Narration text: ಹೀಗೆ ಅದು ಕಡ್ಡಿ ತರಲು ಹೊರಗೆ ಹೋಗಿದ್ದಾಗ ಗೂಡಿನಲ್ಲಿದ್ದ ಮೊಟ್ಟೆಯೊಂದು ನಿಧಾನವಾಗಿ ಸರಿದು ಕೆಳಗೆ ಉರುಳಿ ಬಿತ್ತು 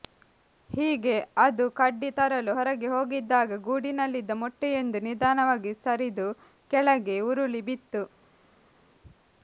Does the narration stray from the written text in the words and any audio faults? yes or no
no